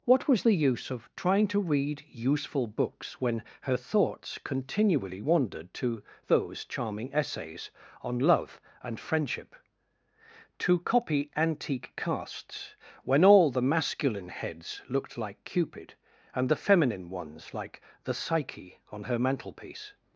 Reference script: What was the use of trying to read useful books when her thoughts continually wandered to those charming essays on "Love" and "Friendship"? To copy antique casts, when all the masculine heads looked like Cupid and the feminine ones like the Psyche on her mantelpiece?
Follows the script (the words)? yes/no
yes